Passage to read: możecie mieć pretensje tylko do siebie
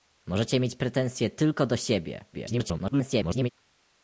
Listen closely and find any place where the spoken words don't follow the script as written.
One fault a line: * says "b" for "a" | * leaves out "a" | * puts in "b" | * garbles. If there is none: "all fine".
* garbles